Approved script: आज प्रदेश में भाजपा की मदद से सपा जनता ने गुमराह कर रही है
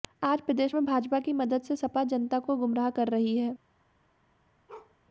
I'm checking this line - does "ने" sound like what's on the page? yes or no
no